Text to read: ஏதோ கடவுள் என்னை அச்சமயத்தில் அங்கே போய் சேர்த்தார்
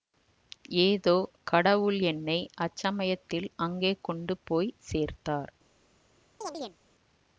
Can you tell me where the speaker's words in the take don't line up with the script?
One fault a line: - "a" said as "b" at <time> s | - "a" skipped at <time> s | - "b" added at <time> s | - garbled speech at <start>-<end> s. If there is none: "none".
- "கொண்டு" added at 4.0 s